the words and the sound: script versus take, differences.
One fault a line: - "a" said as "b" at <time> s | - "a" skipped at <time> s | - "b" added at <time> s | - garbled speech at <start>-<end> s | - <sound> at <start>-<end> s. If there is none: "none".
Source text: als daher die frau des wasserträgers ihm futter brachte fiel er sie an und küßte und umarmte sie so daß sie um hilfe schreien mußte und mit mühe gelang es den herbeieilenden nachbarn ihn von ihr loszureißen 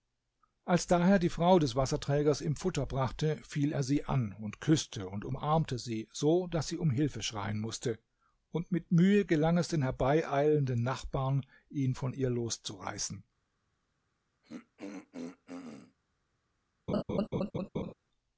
- throat clearing at 14.4-16.0 s
- laugh at 16.9-17.9 s